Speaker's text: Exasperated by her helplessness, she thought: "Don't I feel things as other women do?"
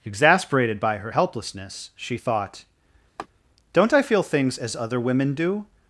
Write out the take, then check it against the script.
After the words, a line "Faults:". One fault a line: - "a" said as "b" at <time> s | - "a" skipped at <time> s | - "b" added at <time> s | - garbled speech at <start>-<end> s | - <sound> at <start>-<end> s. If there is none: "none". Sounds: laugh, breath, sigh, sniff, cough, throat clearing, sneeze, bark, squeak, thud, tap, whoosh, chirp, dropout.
Exasperated by her helplessness, she thought: "Don't I feel things as other women do?"
Faults:
- laugh at 3.2-3.3 s